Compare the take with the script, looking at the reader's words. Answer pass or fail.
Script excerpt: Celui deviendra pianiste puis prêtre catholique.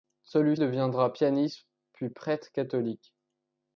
pass